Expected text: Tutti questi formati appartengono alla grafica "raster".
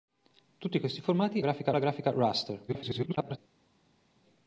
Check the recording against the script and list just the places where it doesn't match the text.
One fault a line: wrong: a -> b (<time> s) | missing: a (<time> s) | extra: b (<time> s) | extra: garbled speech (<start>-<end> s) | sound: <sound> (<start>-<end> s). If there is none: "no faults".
wrong: appartengono -> grafica (1.4 s)
extra: garbled speech (2.7-3.4 s)